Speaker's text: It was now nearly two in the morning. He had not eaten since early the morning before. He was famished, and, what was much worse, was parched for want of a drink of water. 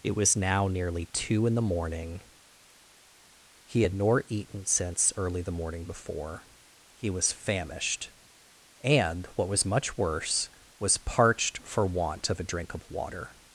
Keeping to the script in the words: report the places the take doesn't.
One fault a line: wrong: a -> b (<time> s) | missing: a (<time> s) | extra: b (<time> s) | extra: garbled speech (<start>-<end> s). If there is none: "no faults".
wrong: not -> nor (3.9 s)